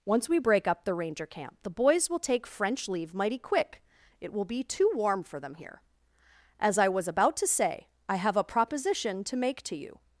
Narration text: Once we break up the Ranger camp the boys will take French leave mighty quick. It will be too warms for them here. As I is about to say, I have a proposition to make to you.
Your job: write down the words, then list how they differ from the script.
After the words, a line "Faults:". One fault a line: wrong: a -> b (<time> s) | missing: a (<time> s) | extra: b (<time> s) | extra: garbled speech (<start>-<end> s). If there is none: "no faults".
Once we break up the Ranger camp the boys will take French leave mighty quick. It will be too warm for them here. As I was about to say, I have a proposition to make to you.
Faults:
wrong: warms -> warm (4.9 s)
wrong: is -> was (6.9 s)